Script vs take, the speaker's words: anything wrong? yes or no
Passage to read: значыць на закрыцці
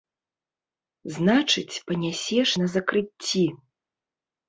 yes